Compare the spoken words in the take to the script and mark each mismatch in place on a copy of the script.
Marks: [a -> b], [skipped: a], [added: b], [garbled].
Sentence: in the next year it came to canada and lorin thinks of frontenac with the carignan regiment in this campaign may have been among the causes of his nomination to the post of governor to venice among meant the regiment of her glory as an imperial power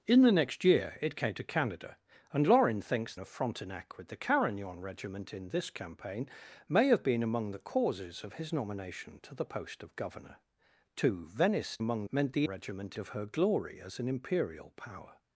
in the next year it came to canada and lorin thinks of frontenac with the carignan regiment in this campaign may have been among the causes of his nomination to the post of governor to venice among meant the regiment of her glory as an imperial power